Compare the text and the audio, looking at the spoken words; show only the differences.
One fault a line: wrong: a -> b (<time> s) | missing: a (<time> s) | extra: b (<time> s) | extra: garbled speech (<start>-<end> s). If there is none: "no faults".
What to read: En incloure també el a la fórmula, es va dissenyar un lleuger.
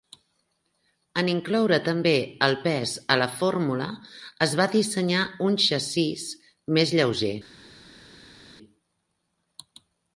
extra: pes (2.7 s)
extra: xassís més (5.6 s)